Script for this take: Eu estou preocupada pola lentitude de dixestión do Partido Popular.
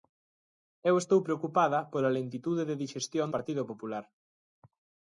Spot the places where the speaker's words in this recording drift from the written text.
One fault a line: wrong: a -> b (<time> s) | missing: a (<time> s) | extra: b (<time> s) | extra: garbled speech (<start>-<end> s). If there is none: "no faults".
missing: do (3.3 s)